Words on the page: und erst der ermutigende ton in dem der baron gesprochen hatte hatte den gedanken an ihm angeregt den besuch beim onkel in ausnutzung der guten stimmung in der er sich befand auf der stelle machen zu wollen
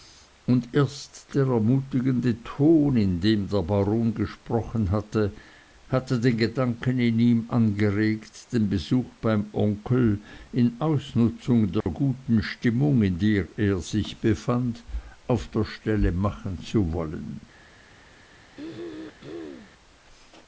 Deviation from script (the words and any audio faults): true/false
true